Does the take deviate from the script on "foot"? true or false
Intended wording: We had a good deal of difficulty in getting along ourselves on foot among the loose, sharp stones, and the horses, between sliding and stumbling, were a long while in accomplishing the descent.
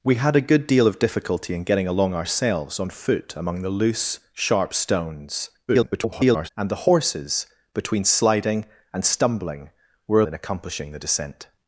false